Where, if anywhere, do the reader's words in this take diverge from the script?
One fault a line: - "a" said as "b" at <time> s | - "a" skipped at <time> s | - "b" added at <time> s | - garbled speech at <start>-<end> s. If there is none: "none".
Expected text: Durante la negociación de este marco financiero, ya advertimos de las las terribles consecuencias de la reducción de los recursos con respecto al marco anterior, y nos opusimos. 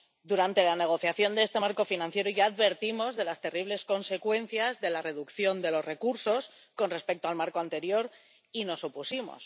- "las" skipped at 3.4 s